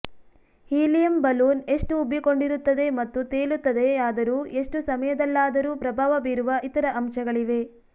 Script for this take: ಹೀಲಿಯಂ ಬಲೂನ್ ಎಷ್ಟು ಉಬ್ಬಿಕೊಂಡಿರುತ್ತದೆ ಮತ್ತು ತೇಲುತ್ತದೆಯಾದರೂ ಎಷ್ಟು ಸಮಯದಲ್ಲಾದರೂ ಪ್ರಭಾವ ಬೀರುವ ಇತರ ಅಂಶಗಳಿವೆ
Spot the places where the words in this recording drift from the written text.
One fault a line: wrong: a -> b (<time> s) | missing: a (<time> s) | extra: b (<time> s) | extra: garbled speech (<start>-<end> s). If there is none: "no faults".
no faults